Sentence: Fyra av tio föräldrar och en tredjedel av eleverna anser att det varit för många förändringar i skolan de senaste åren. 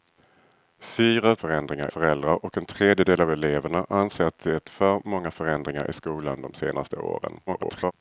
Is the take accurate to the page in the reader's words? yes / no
no